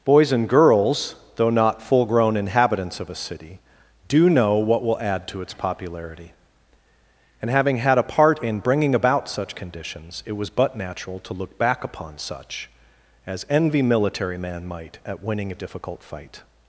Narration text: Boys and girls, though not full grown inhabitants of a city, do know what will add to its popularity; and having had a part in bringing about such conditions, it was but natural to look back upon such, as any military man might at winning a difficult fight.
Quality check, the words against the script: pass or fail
fail